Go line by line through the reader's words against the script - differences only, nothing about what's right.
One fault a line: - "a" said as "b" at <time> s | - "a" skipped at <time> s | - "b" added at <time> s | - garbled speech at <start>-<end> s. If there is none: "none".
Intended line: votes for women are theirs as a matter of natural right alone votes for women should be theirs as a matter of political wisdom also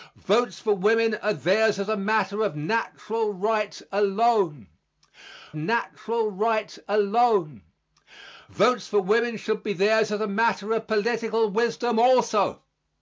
- "natural right alone" added at 5.5 s